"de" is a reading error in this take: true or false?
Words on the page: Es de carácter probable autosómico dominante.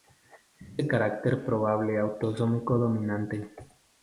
false